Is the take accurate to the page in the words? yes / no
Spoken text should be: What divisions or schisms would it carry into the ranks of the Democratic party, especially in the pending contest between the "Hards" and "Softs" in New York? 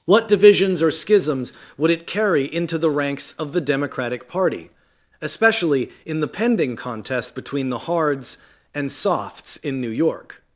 yes